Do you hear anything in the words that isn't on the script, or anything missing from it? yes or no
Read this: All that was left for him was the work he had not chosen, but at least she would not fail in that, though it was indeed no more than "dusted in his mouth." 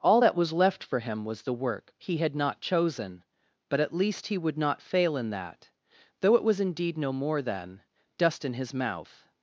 yes